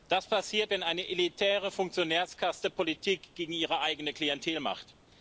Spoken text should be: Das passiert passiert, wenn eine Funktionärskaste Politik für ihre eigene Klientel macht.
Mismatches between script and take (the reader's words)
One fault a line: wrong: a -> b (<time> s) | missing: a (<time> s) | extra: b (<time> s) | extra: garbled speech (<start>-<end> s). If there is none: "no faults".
missing: passiert (0.7 s)
extra: elitäre (1.1 s)
wrong: für -> gegen (3.4 s)